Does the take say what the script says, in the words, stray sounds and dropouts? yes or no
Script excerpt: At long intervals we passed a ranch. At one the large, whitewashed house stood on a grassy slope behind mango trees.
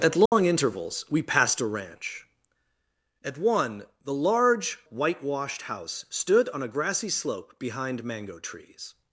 no